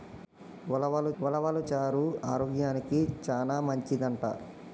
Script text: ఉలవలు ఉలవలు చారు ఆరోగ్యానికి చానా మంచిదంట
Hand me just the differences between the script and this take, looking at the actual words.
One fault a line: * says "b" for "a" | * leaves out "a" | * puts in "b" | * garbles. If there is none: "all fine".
all fine